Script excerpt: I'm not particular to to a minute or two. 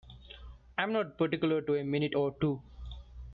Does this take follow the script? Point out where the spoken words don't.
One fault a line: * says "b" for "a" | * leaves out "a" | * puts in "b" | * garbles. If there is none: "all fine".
* leaves out "to"